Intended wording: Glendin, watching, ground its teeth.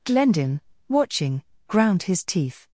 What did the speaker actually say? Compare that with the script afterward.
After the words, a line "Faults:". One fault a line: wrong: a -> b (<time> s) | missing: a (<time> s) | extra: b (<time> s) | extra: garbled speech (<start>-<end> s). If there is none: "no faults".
Glendin, watching, ground his teeth.
Faults:
wrong: its -> his (2.0 s)